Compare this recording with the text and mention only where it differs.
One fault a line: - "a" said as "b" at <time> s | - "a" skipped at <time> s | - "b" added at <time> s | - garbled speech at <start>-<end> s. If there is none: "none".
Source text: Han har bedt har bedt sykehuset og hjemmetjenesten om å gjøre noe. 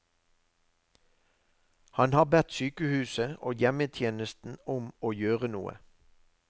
- "har bedt" skipped at 2.5 s